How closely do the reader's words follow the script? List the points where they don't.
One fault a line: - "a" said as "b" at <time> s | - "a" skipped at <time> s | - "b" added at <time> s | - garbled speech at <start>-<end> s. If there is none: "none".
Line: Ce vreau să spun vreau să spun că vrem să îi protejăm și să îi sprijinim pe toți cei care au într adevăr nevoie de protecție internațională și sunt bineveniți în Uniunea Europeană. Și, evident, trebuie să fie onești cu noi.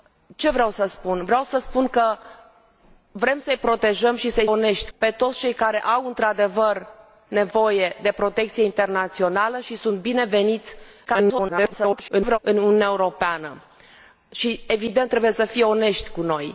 - "sprijinim" said as "onești" at 4.4 s
- garbled speech at 11.1-12.4 s